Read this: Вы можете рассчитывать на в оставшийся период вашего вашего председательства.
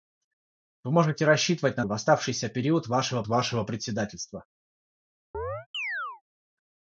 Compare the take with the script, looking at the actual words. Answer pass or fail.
pass